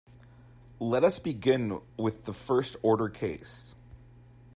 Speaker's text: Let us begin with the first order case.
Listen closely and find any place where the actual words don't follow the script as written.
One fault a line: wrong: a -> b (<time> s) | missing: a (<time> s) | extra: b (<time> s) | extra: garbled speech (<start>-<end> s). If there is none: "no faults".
no faults